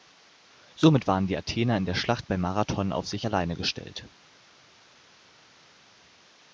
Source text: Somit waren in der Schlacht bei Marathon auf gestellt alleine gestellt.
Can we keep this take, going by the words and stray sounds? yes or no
no